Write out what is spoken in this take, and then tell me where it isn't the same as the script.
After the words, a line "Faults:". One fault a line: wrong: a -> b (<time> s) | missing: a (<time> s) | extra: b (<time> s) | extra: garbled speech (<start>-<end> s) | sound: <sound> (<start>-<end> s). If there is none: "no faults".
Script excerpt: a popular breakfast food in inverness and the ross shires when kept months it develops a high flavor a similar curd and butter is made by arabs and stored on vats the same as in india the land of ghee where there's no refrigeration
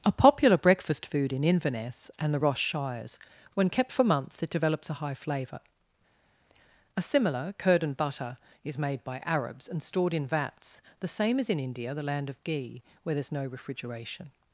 a popular breakfast food in inverness and the ross shires when kept for months it develops a high flavor a similar curd and butter is made by arabs and stored in vats the same as in india the land of ghee where there's no refrigeration
Faults:
extra: for (3.9 s)
wrong: on -> in (10.1 s)